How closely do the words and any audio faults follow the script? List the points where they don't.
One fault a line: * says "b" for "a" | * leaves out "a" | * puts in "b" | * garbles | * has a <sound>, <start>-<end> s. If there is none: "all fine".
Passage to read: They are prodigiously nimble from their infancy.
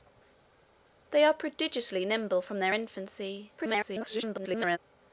* garbles